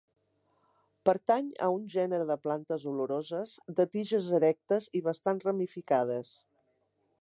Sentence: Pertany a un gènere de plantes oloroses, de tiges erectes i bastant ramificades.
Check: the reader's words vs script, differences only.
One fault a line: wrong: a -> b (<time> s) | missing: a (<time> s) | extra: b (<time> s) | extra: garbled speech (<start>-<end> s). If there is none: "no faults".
no faults